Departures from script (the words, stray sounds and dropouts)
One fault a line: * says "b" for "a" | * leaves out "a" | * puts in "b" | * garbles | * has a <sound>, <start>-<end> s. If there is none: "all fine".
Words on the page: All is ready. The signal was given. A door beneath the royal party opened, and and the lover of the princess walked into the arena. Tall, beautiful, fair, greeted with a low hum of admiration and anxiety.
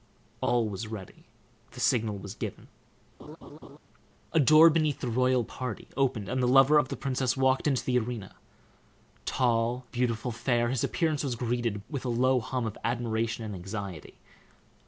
* says "was" for "is"
* has a laugh, 3.2-3.8 s
* leaves out "and"
* puts in "his appearance was"